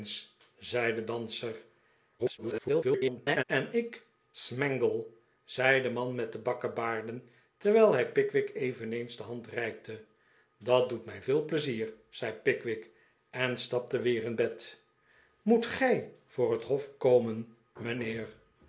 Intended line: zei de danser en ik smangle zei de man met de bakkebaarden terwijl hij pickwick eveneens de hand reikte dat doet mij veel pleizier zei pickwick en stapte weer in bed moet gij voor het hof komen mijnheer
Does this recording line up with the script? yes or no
no